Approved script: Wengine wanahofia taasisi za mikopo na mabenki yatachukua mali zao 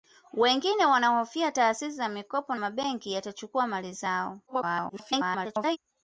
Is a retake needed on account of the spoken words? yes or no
yes